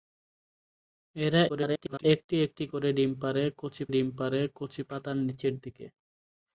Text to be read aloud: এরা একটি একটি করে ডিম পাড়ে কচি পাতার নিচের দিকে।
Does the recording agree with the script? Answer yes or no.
no